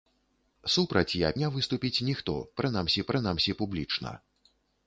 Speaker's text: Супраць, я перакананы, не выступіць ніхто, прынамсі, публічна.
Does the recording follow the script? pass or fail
fail